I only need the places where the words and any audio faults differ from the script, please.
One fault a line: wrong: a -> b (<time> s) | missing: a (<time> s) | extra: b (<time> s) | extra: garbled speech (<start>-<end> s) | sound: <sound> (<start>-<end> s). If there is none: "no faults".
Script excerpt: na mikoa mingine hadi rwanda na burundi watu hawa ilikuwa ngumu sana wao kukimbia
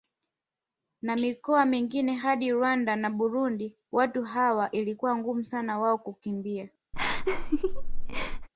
sound: laugh (6.9-8.5 s)